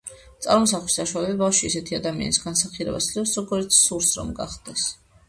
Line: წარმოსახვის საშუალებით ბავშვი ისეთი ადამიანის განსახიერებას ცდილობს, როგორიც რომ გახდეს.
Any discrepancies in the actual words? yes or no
yes